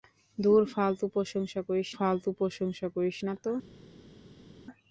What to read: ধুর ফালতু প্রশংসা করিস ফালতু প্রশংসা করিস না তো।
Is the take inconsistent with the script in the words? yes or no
no